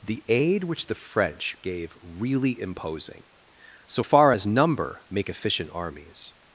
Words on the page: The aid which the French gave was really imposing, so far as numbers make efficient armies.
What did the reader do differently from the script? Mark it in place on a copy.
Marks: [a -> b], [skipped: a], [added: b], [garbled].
The aid which the French gave [skipped: was] really imposing, so far as [numbers -> number] make efficient armies.